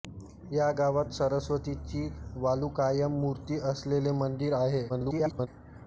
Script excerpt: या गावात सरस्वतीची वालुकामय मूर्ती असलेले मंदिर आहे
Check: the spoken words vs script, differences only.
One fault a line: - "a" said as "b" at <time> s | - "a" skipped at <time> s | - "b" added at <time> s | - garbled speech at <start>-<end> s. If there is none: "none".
- garbled speech at 4.9-5.5 s